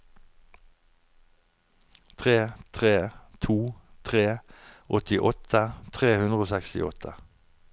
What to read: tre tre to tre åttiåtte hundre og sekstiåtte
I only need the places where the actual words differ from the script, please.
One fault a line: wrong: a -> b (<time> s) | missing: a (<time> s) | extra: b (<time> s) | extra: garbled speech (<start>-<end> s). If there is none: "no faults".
extra: tre (6.0 s)